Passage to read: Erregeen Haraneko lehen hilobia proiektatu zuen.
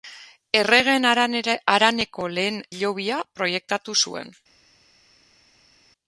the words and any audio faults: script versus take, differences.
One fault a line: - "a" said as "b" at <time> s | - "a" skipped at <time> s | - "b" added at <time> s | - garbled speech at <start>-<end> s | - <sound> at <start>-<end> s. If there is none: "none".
none